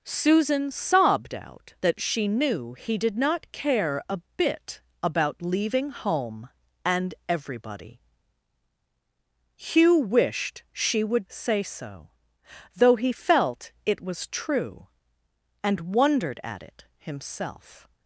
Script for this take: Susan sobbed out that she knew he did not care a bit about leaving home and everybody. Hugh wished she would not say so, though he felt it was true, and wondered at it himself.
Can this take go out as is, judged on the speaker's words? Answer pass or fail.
fail